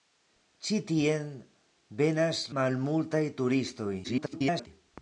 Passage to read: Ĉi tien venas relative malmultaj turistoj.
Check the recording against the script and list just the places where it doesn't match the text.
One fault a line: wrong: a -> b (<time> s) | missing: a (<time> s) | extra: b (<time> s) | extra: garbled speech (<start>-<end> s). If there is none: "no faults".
missing: relative (2.4 s)
extra: garbled speech (4.0-4.7 s)